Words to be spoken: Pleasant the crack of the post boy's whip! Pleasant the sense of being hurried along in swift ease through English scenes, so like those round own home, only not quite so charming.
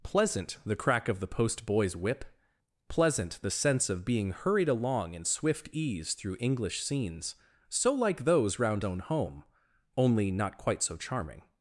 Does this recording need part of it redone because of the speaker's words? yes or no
no